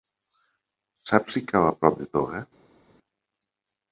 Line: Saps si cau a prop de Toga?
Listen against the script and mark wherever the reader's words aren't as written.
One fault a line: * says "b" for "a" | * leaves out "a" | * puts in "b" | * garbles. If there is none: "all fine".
all fine